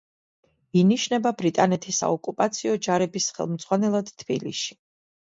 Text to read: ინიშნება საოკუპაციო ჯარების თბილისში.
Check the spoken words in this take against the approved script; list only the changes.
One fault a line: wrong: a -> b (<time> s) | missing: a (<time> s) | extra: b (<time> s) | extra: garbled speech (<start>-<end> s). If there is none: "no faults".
extra: ბრიტანეთის (1.4 s)
extra: ხელმძღვანელად (3.4 s)